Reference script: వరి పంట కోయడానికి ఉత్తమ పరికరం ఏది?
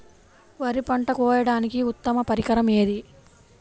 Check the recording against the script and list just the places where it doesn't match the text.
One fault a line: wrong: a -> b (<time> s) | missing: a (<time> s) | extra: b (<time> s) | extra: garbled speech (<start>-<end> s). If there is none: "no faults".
no faults